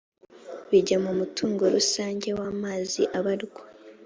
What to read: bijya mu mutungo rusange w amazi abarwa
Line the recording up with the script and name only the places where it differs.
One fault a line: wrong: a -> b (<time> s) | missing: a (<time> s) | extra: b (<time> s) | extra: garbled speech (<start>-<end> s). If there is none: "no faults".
no faults